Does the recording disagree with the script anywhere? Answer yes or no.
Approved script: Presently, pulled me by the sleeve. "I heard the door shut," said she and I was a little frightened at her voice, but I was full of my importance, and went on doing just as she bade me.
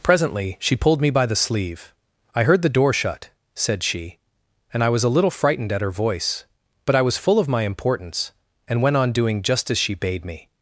yes